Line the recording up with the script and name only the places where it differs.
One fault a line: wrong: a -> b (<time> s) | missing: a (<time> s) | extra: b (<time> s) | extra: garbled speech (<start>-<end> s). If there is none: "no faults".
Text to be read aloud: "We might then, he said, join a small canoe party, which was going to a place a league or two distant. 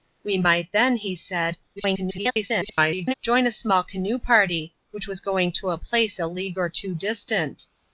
extra: garbled speech (1.8-3.1 s)